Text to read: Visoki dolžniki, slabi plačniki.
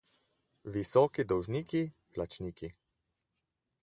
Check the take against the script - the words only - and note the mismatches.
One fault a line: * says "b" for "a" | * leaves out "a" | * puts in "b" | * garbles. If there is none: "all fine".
* leaves out "slabi"